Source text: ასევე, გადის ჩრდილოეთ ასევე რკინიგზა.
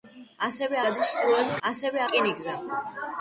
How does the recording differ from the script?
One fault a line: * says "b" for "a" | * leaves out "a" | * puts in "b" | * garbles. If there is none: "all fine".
all fine